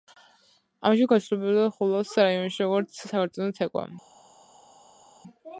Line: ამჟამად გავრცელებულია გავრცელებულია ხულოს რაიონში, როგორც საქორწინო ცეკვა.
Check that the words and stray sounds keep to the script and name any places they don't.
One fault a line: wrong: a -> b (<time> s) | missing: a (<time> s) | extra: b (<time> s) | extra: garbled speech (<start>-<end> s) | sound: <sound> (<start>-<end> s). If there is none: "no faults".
missing: გავრცელებულია (1.7 s)